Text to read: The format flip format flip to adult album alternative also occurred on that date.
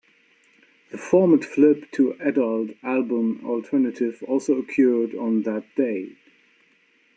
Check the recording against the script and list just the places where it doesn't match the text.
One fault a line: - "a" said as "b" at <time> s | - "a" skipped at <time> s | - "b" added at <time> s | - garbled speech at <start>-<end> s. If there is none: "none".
- "format flip" skipped at 1.9 s